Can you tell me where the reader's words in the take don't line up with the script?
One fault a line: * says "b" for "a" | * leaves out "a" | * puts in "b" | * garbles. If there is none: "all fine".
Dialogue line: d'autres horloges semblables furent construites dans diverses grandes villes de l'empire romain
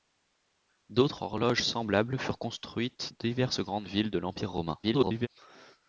* leaves out "dans"
* garbles